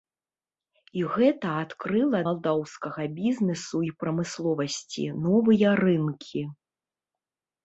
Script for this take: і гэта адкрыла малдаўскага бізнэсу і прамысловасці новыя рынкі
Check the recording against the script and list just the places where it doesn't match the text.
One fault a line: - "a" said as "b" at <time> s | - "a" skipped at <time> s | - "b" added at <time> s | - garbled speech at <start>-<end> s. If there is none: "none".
none